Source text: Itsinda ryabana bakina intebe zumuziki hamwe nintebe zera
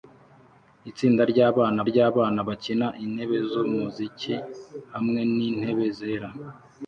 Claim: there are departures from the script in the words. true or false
true